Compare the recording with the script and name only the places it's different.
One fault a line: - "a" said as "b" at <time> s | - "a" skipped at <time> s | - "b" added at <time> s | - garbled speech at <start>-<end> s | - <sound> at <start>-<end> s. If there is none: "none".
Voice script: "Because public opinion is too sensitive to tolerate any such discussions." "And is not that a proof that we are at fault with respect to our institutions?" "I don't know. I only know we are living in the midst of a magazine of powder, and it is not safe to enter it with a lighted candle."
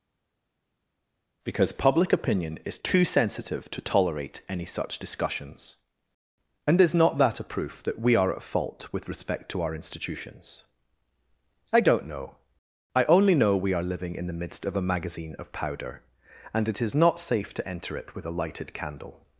none